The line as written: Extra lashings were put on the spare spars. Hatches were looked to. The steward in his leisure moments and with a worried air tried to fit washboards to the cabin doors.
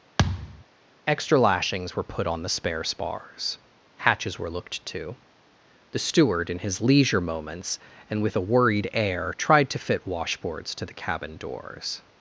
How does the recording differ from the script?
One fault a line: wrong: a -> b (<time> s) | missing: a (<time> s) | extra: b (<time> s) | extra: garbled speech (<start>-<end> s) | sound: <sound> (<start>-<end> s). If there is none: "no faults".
sound: thud (0.2-0.6 s)